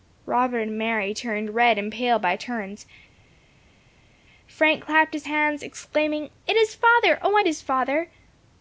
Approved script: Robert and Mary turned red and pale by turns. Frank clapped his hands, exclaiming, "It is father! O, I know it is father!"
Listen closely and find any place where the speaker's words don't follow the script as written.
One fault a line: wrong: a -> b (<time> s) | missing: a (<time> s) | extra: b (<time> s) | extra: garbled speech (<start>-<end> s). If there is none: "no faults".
missing: know (7.4 s)